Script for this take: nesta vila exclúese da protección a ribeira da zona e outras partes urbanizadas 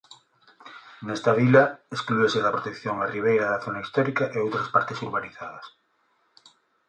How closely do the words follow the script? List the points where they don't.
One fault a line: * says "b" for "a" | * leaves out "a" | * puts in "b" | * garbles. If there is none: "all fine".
* puts in "histórica"